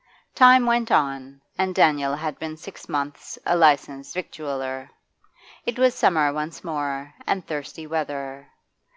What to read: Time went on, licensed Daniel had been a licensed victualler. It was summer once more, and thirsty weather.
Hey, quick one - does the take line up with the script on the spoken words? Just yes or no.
no